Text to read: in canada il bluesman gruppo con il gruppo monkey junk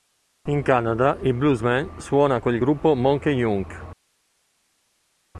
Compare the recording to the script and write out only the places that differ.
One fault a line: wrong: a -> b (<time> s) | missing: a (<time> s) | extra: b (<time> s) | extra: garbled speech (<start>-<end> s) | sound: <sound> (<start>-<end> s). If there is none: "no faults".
wrong: gruppo -> suona (2.0 s)